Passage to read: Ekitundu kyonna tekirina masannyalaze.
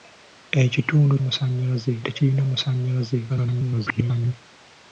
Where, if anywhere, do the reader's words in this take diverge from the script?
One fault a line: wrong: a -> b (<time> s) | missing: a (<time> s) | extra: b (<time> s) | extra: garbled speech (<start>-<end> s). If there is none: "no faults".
wrong: kyonna -> masannyalaze (1.2 s)
extra: garbled speech (3.3-4.3 s)